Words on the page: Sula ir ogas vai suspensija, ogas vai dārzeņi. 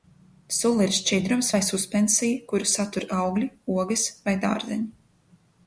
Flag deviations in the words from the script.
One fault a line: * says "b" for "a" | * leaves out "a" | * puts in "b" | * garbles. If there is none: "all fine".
* says "šķidrums" for "ogas"
* puts in "kuru satur augļi"